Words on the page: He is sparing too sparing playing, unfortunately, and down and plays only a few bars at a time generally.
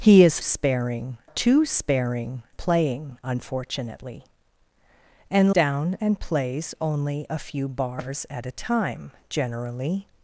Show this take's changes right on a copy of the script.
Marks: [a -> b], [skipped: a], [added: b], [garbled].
He is sparing too sparing playing, unfortunately, and down and plays only a few bars at a time generally.